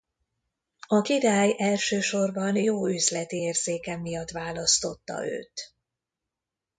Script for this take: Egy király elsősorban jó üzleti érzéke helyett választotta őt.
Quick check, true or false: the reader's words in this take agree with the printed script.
false